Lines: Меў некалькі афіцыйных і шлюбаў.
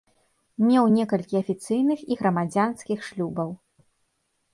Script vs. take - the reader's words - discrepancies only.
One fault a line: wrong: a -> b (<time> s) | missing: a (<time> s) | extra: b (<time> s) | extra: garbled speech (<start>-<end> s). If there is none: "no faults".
extra: грамадзянскіх (2.2 s)